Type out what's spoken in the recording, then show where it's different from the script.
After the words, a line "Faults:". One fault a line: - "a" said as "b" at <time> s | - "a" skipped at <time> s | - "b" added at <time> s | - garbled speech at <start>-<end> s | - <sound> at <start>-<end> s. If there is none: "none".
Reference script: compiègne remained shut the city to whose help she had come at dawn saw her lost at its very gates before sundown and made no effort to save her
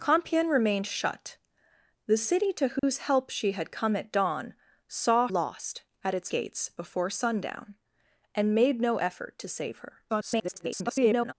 compiègne remained shut the city to whose help she had come at dawn saw lost at its gates before sundown and made no effort to save her [garbled]
Faults:
- dropout at 2.8-2.8 s
- "her" skipped at 5.3 s
- "very" skipped at 6.3 s
- garbled speech at 10.1-11.3 s